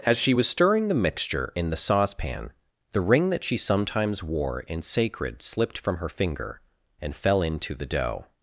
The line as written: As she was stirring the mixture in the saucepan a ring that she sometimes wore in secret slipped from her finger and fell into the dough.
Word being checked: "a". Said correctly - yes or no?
no